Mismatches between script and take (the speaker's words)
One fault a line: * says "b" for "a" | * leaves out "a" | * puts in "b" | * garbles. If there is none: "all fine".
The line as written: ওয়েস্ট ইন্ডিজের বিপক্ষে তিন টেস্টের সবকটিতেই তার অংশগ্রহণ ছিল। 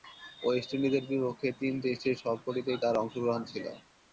all fine